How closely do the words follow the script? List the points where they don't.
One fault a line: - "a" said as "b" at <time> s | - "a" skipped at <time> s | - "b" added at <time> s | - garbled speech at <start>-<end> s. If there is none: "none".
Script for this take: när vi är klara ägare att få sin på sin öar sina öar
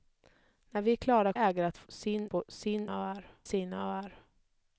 none